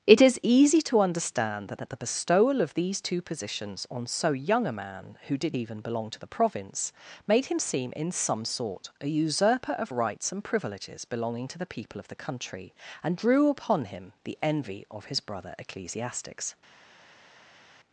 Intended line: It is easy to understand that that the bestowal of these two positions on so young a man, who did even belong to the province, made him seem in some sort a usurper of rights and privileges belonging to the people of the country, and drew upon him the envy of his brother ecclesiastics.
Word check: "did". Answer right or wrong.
right